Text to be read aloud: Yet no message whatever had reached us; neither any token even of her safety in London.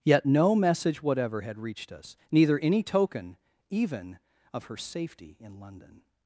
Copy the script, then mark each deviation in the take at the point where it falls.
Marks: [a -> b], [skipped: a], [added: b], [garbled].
Yet no message whatever had reached us; neither any token even of her safety in London.